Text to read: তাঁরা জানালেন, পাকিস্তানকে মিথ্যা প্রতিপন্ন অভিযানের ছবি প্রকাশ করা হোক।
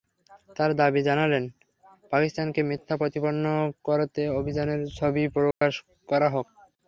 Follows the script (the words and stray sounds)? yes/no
no